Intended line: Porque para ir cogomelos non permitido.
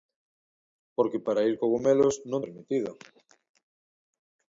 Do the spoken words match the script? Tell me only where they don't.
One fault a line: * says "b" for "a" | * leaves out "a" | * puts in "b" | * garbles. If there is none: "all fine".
all fine